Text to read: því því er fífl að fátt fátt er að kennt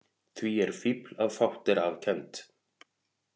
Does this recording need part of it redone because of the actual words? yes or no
yes